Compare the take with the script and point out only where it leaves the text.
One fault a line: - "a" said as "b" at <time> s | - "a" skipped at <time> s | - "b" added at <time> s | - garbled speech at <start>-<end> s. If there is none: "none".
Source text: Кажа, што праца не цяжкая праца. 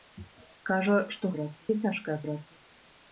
none